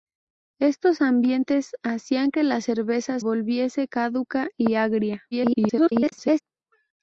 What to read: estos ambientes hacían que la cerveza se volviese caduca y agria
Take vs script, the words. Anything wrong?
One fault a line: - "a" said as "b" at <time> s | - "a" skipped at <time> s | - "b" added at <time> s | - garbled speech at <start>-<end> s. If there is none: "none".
- "se" skipped at 3.2 s
- garbled speech at 5.3-6.4 s